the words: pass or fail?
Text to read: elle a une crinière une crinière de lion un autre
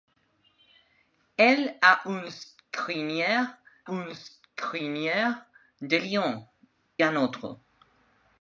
pass